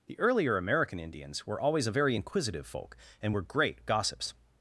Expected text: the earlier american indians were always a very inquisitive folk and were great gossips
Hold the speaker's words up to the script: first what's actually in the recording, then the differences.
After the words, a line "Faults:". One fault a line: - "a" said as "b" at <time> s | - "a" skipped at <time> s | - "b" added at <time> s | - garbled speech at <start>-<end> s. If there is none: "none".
the earlier american indians were always a very inquisitive folk and were great gossips
Faults:
none